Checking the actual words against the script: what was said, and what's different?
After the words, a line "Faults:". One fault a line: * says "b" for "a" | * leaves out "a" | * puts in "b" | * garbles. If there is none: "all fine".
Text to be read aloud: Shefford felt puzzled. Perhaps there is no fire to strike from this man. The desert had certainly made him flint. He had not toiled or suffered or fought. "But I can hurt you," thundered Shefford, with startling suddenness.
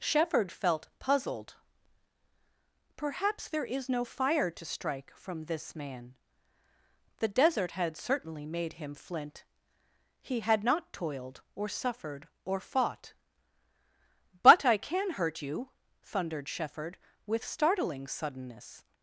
Shefford felt puzzled. Perhaps there is no fire to strike from this man. The desert had certainly made him flint. He had not toiled or suffered or fought. "But I can hurt you," thundered Shefford, with startling suddenness.
Faults:
all fine